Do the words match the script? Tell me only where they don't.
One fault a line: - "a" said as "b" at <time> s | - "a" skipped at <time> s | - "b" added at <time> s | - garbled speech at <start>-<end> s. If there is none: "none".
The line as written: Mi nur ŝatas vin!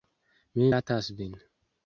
- "nur" skipped at 0.7 s